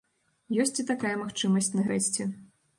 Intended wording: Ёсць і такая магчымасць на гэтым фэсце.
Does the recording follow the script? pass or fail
fail